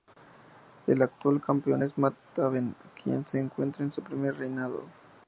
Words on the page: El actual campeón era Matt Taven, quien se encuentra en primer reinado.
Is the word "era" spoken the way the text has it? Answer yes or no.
no